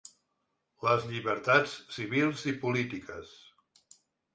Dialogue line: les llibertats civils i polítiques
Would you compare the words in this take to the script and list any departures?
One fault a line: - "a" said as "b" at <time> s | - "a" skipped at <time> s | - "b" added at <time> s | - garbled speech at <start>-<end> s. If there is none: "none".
none